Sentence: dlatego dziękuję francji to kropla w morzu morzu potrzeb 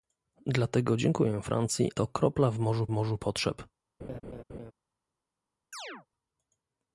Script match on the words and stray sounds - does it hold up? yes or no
no